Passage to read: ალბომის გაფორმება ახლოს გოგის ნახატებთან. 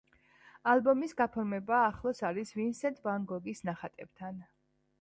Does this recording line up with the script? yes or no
no